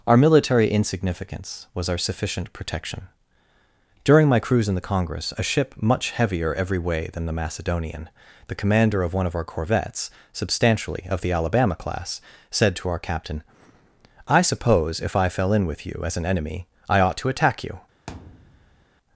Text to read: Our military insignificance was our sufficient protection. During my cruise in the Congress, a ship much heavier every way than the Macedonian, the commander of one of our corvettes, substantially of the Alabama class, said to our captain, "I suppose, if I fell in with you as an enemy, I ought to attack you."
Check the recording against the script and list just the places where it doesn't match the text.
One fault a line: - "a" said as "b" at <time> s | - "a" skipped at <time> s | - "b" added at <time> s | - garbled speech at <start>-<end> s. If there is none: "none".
none